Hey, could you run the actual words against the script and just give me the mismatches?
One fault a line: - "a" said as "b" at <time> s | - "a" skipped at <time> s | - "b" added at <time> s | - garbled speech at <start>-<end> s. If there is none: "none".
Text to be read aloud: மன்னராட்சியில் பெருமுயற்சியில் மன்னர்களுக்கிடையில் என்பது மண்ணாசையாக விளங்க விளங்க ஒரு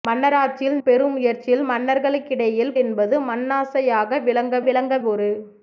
none